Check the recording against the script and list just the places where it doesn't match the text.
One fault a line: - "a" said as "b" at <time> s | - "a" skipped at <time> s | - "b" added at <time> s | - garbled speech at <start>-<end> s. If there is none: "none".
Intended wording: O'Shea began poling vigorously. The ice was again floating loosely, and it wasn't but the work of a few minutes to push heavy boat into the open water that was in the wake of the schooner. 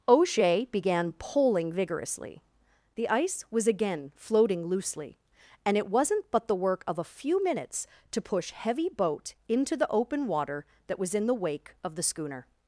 none